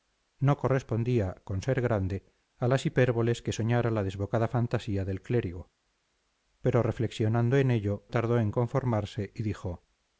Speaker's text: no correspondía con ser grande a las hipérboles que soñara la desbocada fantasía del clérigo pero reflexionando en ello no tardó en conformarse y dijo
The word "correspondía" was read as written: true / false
true